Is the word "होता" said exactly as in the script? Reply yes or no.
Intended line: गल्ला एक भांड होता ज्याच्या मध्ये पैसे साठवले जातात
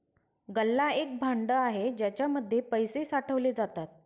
no